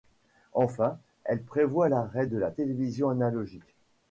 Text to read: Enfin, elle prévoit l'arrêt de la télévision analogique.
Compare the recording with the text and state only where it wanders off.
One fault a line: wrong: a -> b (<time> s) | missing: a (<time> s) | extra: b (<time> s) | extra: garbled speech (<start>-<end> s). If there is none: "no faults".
no faults